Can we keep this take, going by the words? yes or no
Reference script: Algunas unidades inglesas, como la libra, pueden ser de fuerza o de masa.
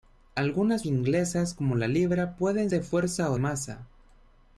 no